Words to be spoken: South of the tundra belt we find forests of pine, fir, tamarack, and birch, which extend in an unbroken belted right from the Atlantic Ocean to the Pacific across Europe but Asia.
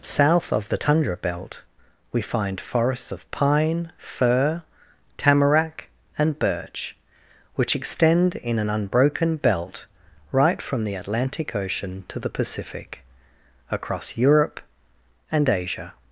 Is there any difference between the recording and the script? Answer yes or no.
yes